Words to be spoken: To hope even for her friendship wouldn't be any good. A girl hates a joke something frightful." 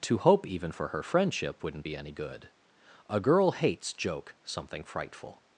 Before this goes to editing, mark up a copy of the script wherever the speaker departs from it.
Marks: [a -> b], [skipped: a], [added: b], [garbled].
To hope even for her friendship wouldn't be any good. A girl hates [skipped: a] joke something frightful."